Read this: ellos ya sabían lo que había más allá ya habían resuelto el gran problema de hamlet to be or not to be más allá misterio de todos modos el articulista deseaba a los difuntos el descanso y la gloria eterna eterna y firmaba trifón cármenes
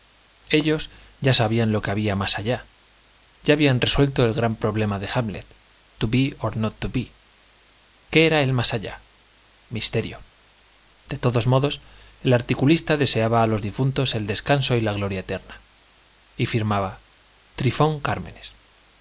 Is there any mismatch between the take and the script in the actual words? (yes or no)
yes